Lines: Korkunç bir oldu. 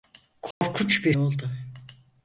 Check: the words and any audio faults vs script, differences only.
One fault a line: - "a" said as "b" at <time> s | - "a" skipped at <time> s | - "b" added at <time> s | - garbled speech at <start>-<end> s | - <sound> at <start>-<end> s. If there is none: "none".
- dropout at 0.5-0.6 s